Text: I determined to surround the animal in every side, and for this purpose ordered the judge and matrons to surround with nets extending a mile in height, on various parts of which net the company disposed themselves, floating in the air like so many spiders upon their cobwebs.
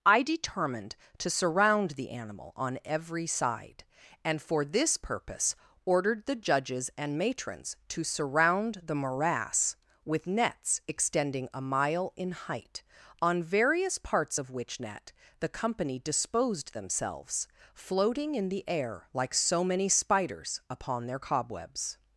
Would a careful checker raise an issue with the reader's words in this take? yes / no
yes